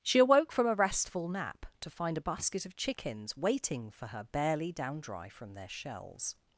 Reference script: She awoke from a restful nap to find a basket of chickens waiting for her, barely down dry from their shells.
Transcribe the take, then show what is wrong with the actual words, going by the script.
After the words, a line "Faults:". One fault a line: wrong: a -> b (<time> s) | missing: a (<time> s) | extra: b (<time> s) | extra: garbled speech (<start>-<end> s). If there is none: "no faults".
She awoke from a restful nap to find a basket of chickens waiting for her, barely down dry from their shells.
Faults:
no faults